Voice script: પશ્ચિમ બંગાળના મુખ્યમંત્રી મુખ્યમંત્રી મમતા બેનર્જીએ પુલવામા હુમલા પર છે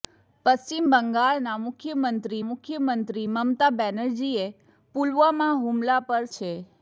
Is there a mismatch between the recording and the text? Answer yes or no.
no